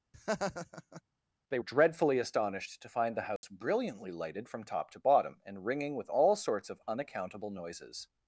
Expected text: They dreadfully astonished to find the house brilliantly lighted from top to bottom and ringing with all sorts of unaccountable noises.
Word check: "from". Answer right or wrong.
right